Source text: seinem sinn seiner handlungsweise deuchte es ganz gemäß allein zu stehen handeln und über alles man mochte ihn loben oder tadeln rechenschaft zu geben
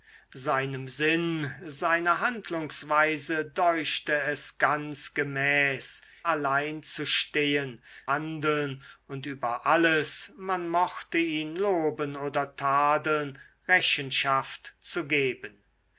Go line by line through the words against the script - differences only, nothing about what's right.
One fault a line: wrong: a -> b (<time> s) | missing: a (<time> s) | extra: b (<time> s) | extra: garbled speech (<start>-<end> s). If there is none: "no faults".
no faults